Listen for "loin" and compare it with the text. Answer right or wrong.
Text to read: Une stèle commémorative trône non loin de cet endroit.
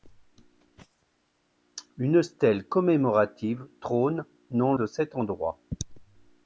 wrong